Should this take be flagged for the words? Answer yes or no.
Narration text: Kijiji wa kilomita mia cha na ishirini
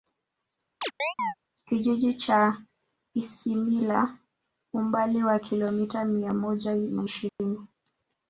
yes